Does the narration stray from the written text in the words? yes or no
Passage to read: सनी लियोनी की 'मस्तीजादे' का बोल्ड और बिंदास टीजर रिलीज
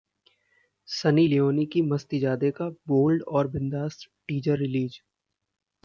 no